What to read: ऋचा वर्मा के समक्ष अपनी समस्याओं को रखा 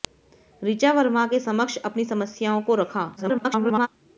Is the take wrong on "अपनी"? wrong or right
right